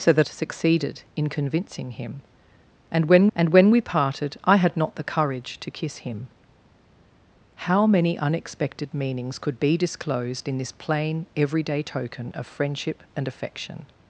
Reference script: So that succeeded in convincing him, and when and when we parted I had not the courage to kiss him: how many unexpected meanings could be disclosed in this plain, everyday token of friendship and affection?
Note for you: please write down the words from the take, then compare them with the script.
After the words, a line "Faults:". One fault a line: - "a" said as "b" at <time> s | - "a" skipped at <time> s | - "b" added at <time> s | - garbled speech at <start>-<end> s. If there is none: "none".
So that succeeded in convincing him, and when and when we parted I had not the courage to kiss him: how many unexpected meanings could be disclosed in this plain, everyday token of friendship and affection?
Faults:
none